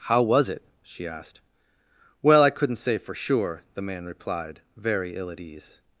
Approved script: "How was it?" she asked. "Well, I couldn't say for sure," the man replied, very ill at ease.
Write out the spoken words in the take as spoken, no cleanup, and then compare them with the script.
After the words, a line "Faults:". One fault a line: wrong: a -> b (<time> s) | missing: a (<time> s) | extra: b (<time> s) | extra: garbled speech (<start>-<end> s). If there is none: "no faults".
"How was it?" she asked. "Well, I couldn't say for sure," the man replied, very ill at ease.
Faults:
no faults